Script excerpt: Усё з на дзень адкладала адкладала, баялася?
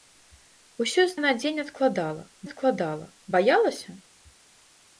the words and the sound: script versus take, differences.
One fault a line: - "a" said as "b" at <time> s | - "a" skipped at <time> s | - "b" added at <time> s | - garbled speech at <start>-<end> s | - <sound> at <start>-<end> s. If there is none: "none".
none